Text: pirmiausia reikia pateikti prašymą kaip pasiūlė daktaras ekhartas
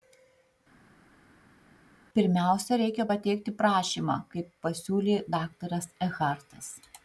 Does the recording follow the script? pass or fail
pass